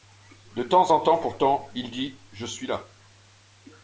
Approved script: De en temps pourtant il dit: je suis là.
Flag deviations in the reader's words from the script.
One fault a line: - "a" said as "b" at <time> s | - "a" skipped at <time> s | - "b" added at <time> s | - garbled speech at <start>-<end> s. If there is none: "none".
- "temps" added at 0.6 s